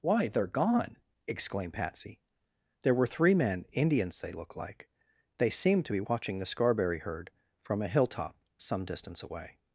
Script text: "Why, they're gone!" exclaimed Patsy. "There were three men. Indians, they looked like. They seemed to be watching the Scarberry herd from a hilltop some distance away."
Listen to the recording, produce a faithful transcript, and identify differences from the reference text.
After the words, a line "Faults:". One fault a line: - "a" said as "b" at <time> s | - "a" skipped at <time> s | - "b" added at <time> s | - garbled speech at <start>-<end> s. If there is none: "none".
"Why, they're gone!" exclaimed Patsy. "There were three men. Indians, they looked like. They seemed to be watching the Scarberry herd from a hilltop some distance away."
Faults:
none